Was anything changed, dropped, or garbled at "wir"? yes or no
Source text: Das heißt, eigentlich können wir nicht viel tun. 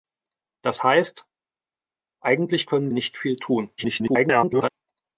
yes